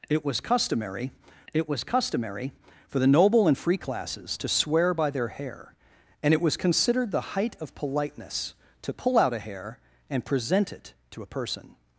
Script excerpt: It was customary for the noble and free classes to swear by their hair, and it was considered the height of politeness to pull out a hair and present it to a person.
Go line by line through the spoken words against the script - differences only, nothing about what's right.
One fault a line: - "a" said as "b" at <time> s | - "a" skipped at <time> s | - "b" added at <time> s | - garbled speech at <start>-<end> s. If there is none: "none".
- "it was customary" added at 1.5 s